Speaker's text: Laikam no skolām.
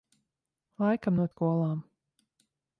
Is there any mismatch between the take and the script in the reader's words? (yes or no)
no